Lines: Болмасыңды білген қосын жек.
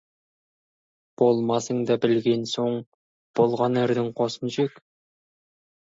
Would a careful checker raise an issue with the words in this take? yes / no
yes